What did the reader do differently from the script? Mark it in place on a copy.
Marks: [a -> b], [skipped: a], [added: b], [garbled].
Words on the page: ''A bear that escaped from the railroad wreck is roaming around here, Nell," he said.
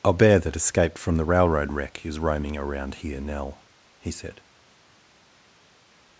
''A bear that escaped from the railroad wreck is roaming around here, Nell," he said.